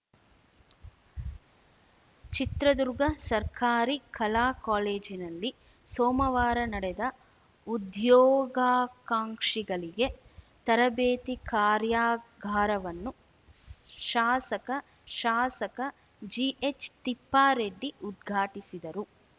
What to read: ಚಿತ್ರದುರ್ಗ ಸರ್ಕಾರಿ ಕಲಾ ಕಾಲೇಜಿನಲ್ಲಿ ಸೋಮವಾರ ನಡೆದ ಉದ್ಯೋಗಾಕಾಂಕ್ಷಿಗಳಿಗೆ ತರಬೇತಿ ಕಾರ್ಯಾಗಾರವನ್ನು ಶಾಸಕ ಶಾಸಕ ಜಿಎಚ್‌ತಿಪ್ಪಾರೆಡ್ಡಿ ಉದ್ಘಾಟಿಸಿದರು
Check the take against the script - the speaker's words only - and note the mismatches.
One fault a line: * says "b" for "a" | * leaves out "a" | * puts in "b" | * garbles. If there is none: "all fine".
all fine